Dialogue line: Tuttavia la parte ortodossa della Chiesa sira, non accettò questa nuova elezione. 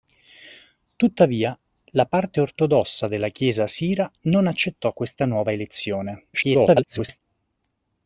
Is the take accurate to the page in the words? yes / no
no